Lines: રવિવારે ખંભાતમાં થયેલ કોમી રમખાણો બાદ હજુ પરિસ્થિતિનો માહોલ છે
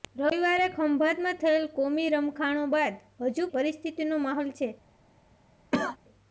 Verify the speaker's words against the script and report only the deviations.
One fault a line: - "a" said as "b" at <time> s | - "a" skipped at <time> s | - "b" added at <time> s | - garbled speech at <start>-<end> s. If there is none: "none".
none